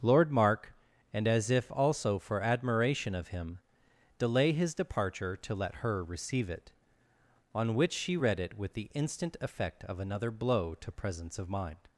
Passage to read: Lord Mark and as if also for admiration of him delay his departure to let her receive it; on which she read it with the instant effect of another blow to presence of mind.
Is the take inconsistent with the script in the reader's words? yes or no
no